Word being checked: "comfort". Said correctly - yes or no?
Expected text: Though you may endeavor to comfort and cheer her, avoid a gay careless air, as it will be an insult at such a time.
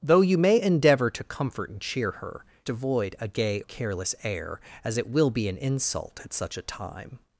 yes